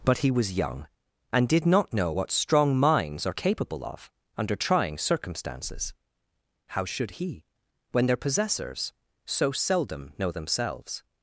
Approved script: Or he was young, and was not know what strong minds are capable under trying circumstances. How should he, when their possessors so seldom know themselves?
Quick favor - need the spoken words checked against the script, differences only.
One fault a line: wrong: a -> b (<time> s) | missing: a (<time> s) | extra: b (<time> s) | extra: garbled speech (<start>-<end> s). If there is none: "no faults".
wrong: Or -> But (0.0 s)
wrong: was -> did (1.5 s)
extra: of (3.8 s)